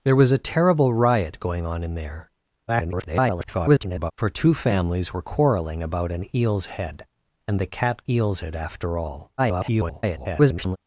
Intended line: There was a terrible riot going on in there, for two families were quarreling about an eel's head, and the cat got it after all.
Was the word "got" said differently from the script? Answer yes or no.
yes